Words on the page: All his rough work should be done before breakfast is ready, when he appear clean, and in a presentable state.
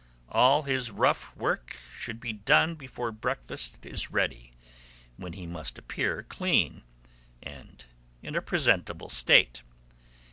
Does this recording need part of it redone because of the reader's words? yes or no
yes